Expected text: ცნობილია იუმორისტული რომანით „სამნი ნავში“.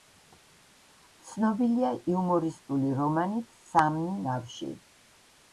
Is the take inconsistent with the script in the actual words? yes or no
no